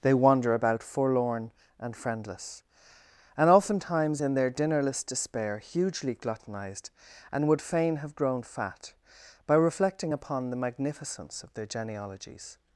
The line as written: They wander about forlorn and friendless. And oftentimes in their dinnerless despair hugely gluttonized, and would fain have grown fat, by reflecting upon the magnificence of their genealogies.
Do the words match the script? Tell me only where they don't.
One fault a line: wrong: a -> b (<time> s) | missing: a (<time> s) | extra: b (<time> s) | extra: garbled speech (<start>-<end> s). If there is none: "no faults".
no faults